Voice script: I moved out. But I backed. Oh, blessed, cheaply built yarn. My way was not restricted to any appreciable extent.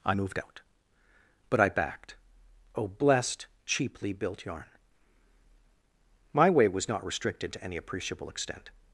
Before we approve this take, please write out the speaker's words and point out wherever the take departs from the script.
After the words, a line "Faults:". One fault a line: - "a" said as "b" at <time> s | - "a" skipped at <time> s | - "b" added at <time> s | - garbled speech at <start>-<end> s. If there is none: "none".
I moved out. But I backed. Oh, blessed, cheaply built yarn. My way was not restricted to any appreciable extent.
Faults:
none